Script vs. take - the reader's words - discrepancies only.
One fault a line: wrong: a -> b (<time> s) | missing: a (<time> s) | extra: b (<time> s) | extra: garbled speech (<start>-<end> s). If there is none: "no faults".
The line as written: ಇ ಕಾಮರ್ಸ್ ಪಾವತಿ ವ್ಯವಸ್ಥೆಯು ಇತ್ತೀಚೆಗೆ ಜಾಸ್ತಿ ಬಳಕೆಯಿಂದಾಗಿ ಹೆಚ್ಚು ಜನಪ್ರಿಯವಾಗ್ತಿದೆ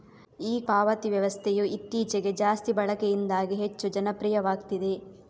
missing: ಕಾಮರ್ಸ್ (0.6 s)